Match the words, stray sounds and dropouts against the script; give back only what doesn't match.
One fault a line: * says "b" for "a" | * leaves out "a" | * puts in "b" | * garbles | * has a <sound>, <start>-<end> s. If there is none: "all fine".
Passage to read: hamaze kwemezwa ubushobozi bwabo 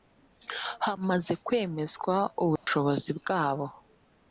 * has a dropout, 2.6-2.7 s